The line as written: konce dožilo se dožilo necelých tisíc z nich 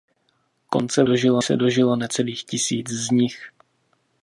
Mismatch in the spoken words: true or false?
false